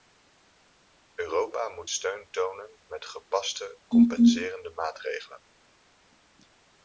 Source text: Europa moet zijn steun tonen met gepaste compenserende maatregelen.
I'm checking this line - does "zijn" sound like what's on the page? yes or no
no